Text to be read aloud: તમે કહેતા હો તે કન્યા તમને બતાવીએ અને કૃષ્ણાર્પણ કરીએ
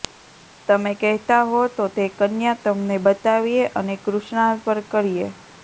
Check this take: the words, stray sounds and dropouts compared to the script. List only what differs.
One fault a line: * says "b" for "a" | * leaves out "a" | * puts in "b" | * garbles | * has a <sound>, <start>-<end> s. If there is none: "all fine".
* puts in "તો"